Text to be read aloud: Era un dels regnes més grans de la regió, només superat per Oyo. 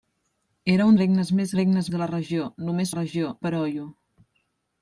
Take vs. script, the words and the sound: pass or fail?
fail